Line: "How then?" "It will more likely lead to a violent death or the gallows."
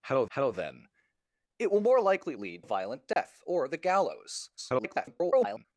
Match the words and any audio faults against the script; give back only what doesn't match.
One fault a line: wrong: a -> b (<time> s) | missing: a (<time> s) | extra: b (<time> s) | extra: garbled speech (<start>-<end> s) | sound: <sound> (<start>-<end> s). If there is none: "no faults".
extra: how (0.3 s)
missing: to (2.6 s)
sound: dropout (3.1-3.2 s)
extra: garbled speech (4.6-5.7 s)